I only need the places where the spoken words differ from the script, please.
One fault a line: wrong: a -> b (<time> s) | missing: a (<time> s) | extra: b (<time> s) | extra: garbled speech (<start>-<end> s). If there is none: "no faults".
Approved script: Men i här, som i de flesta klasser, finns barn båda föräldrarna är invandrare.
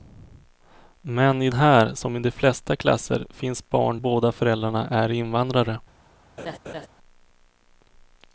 no faults